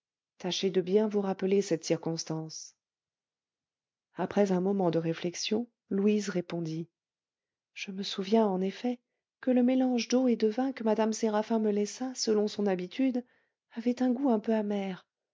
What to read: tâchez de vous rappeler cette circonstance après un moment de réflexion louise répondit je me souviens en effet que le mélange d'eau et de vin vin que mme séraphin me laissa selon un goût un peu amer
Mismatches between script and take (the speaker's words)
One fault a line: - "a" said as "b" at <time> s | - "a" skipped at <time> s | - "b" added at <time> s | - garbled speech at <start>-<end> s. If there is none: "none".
- "bien" added at 0.8 s
- "vin" skipped at 10.7 s
- "son habitude avait" added at 12.5 s